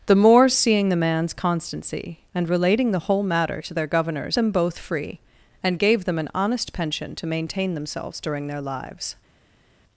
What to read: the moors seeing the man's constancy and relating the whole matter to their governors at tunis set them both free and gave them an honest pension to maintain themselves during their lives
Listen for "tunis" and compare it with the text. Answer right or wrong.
wrong